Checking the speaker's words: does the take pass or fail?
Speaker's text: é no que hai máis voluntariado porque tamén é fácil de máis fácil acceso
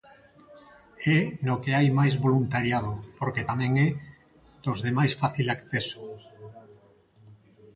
fail